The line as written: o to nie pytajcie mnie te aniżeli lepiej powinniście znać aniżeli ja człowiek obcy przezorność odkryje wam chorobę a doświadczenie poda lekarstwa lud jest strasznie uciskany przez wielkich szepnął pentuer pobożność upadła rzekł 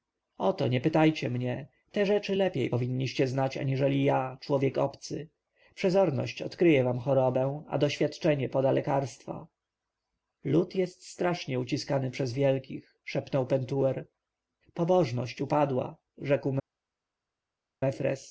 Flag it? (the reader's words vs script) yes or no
yes